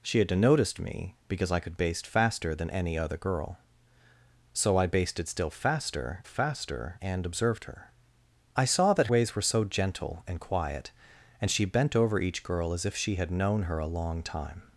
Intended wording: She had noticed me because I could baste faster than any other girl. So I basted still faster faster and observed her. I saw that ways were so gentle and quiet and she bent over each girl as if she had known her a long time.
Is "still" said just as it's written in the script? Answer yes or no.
yes